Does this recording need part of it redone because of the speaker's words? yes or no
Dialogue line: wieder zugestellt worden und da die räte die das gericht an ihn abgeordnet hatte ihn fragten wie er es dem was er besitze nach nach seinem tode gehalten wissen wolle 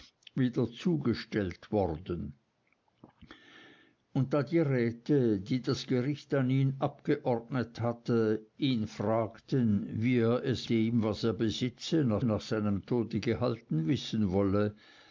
no